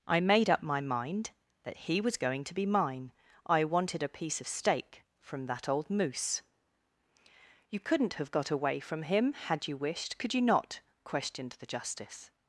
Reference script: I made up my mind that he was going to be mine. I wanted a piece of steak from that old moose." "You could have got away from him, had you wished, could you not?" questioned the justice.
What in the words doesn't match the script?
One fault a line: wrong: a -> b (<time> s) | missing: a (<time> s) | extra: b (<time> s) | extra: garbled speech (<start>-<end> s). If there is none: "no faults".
wrong: could -> couldn't (7.8 s)